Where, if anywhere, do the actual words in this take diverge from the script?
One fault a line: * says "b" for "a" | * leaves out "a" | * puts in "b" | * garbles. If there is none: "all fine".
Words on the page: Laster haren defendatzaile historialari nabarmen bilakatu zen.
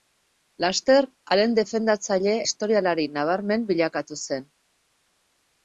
all fine